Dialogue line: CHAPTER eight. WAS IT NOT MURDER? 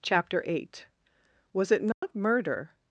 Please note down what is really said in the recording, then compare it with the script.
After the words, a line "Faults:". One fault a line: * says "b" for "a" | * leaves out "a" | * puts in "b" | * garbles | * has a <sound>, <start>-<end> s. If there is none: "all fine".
CHAPTER eight. WAS IT NOT MURDER?
Faults:
* has a dropout, 1.9-2.0 s